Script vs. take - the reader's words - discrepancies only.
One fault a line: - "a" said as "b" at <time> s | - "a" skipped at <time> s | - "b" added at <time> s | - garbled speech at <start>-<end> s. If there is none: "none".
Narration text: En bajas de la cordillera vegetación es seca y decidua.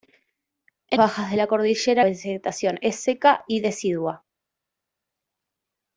none